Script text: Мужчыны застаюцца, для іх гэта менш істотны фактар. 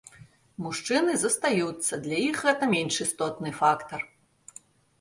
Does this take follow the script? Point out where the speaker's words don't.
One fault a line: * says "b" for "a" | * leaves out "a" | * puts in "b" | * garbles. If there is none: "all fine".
all fine